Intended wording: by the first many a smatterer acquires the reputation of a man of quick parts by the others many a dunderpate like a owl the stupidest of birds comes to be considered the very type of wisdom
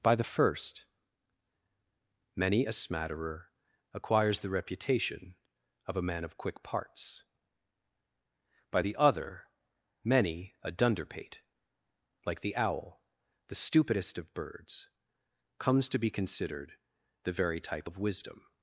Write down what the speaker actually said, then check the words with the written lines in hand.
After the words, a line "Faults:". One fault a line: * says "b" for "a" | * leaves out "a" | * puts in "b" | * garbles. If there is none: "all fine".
by the first many a smatterer acquires the reputation of a man of quick parts by the other many a dunderpate like the owl the stupidest of birds comes to be considered the very type of wisdom
Faults:
* says "other" for "others"
* says "the" for "a"